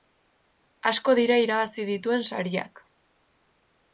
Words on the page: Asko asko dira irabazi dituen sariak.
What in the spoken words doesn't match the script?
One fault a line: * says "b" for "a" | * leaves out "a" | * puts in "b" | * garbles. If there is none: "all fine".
* leaves out "asko"